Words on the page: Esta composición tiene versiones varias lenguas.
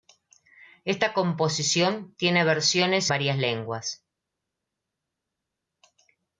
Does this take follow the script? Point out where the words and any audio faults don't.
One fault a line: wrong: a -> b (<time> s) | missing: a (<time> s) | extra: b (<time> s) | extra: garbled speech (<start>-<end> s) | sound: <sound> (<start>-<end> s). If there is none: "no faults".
no faults